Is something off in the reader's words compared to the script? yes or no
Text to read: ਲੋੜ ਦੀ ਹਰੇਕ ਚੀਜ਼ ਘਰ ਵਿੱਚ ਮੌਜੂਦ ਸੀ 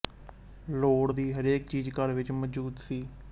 no